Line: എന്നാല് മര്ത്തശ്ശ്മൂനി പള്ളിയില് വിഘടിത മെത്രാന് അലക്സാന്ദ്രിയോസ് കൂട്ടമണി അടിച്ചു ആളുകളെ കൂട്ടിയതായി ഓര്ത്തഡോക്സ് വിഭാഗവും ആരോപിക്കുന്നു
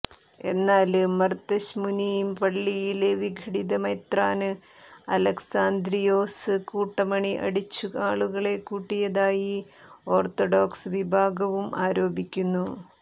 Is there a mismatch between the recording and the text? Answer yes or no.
no